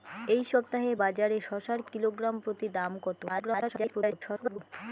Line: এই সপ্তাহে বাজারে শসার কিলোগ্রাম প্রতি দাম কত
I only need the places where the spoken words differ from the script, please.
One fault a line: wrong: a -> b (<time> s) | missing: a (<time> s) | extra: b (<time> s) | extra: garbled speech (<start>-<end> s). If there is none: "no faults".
extra: garbled speech (3.3-4.6 s)